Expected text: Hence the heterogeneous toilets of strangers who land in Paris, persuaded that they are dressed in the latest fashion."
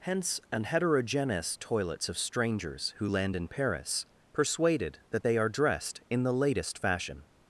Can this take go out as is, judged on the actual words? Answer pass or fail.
fail